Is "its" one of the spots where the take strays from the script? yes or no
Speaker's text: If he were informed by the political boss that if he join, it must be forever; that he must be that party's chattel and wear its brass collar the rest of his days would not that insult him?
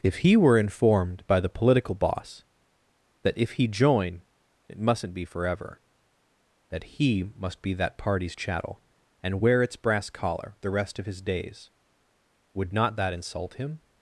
no